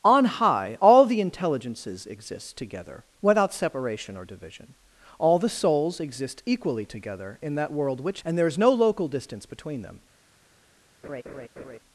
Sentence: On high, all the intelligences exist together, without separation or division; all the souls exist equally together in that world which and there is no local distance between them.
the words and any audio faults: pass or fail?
fail